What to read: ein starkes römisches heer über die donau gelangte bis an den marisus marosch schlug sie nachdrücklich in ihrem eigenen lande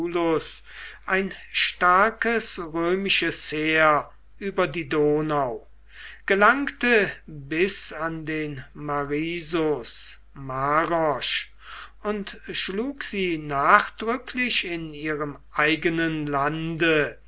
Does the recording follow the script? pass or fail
fail